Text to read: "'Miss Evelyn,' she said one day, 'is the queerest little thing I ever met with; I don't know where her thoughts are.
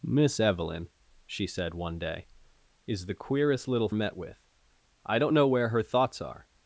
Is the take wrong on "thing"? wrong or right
wrong